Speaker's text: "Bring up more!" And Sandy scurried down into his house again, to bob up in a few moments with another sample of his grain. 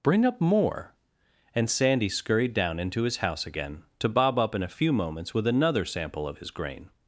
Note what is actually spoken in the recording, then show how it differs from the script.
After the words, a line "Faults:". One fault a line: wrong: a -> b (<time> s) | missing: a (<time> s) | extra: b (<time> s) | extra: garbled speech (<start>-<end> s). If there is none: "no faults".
"Bring up more!" And Sandy scurried down into his house again, to bob up in a few moments with another sample of his grain.
Faults:
no faults